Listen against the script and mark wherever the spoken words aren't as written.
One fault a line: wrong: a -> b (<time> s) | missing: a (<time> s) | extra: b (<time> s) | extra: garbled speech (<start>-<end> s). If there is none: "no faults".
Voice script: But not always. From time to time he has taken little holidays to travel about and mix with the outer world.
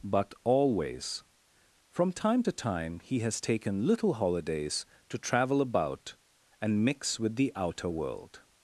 missing: not (0.3 s)